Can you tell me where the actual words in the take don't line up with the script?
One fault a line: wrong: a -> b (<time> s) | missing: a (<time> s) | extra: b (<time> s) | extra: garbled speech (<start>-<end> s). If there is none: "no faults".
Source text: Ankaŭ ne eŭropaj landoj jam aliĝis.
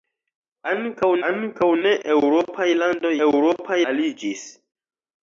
extra: ankaŭ (1.3 s)
wrong: jam -> eŭropaj (3.3 s)